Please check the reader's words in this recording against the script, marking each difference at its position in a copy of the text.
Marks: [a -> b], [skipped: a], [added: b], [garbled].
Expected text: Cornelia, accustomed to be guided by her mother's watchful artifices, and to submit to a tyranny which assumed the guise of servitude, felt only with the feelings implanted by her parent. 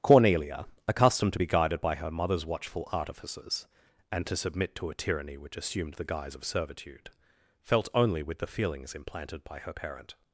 Cornelia, accustomed to be guided by her mother's watchful artifices, and to submit to a tyranny which assumed the guise of servitude, felt only with the feelings implanted by her parent.